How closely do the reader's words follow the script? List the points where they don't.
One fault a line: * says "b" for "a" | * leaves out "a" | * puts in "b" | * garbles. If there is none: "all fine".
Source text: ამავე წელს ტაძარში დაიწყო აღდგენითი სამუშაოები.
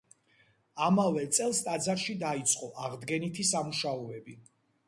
all fine